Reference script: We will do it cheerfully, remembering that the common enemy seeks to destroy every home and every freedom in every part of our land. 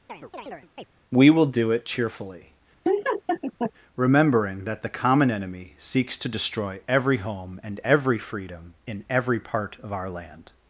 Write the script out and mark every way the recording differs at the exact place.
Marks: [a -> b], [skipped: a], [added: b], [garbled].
We will do it cheerfully, remembering that the common enemy seeks to destroy every home and every freedom in every part of our land.